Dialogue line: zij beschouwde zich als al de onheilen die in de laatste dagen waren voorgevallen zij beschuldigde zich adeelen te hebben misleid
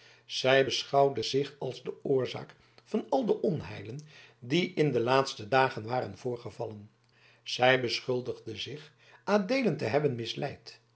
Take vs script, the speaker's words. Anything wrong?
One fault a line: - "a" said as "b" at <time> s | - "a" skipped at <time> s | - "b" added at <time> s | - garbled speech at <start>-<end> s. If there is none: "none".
- "de oorzaak van" added at 1.8 s